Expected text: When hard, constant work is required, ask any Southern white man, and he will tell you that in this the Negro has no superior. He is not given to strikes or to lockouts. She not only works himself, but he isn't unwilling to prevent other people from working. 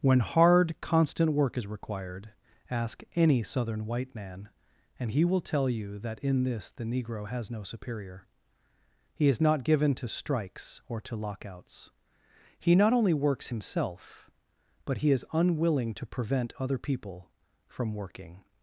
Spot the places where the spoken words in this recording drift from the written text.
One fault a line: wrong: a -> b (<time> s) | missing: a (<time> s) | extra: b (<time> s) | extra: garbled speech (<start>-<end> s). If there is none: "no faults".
wrong: She -> He (12.6 s)
wrong: isn't -> is (15.1 s)